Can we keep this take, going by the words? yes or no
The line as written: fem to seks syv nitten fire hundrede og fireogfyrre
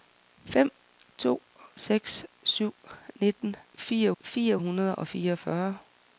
no